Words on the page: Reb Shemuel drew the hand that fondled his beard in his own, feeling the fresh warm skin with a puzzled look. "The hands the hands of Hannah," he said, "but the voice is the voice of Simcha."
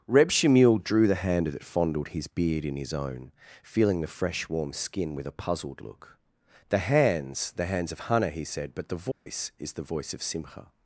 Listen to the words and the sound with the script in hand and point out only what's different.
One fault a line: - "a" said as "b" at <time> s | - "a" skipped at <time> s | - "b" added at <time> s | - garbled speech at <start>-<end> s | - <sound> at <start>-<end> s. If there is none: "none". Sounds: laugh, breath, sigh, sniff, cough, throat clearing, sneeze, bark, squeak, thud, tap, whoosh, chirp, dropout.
- dropout at 9.1-9.3 s